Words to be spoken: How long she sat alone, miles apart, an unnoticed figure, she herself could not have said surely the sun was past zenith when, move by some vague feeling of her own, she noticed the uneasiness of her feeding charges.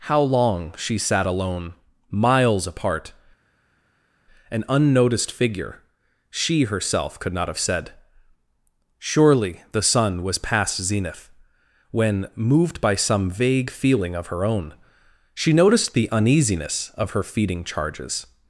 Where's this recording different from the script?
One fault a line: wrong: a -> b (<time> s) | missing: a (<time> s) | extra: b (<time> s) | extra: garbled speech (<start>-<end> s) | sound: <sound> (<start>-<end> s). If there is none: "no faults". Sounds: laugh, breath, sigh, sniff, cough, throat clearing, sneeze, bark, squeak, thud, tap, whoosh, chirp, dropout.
wrong: move -> moved (12.3 s)